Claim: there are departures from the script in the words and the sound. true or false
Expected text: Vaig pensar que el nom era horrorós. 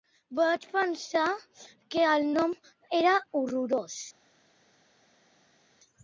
false